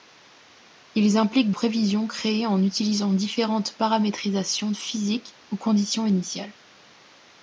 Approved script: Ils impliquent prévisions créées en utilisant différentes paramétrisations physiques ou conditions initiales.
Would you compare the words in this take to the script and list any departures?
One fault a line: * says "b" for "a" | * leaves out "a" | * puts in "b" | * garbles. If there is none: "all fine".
all fine